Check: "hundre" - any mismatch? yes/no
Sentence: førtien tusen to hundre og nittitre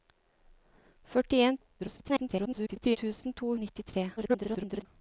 yes